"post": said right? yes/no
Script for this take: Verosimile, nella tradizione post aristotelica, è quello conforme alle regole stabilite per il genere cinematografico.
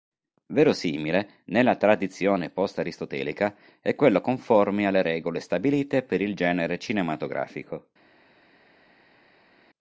yes